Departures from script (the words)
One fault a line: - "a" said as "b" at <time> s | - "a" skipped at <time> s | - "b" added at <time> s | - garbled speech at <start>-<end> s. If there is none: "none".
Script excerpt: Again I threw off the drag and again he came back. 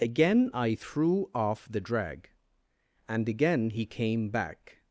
none